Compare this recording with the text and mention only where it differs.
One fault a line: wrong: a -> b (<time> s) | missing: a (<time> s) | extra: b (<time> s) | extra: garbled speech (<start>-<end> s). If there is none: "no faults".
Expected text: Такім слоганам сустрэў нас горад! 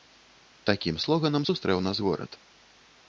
no faults